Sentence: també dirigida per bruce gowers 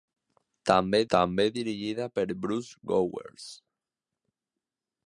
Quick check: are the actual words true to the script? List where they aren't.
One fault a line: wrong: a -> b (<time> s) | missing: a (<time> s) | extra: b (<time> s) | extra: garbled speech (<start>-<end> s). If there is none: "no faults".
extra: també (1.1 s)